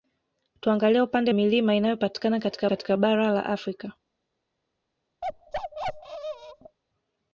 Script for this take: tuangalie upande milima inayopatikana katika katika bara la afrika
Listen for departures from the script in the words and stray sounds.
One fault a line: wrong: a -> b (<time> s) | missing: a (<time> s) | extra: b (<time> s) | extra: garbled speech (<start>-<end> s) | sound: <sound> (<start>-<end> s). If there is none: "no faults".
sound: bark (5.2-6.8 s)